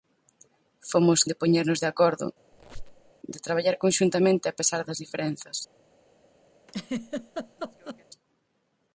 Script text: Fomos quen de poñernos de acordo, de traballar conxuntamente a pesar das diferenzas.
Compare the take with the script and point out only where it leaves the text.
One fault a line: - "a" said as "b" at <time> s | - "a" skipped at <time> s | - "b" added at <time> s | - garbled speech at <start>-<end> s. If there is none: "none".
- "quen" skipped at 1.2 s